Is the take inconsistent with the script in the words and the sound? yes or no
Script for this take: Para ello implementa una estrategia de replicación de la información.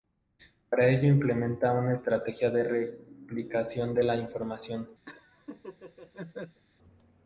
yes